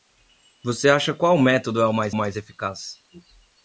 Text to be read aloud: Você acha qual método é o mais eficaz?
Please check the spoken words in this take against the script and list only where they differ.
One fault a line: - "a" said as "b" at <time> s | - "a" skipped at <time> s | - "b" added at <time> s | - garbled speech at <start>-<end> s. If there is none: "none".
- "mais" added at 2.1 s